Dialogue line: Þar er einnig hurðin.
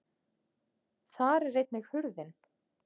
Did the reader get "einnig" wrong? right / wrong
right